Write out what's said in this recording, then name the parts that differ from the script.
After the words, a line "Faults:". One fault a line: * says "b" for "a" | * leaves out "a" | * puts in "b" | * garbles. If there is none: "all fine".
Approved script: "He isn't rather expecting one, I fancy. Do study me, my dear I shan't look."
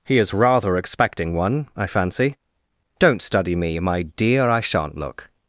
"He is rather expecting one, I fancy. Don't study me, my dear I shan't look."
Faults:
* says "is" for "isn't"
* says "Don't" for "Do"